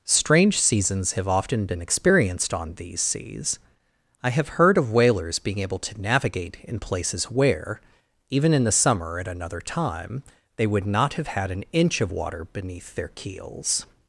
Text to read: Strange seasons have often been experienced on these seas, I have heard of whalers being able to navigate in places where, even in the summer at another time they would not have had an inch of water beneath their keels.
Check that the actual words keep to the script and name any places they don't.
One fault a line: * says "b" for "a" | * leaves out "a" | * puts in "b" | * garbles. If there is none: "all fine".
all fine